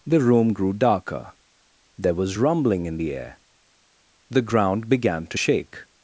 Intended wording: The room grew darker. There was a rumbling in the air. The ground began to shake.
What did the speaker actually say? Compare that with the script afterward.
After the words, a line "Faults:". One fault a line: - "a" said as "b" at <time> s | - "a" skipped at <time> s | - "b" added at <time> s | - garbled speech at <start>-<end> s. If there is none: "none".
The room grew darker. There was rumbling in the air. The ground began to shake.
Faults:
- "a" skipped at 2.4 s